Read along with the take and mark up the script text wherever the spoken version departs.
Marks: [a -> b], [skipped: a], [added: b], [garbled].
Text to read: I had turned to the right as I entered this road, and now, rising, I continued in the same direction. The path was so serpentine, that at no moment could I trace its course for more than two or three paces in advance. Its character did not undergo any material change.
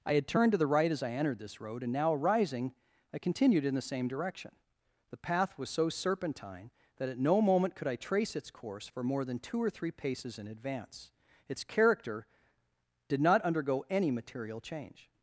I had turned to the right as I entered this road, and now, rising, I continued in the same direction. The path was so serpentine, that at no moment could I trace its course for more than two or three paces in advance. Its character did not undergo any material change.